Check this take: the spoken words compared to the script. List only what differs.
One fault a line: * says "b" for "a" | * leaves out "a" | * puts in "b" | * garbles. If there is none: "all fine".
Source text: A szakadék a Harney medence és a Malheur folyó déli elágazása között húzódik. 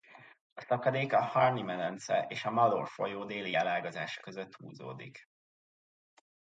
all fine